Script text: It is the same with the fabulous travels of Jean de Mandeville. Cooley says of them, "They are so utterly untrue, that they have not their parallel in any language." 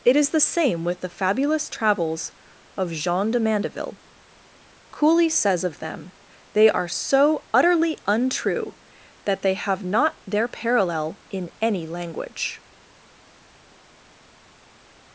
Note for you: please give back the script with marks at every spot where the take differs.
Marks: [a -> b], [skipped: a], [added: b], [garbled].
It is the same with the fabulous travels of Jean de Mandeville. Cooley says of them, "They are so utterly untrue, that they have not their parallel in any language."